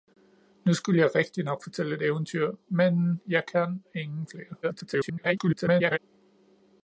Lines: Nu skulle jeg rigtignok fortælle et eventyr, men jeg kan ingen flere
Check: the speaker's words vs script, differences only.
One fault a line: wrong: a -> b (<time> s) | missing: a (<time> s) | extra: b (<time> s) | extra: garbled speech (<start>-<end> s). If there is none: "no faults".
extra: garbled speech (4.6-6.0 s)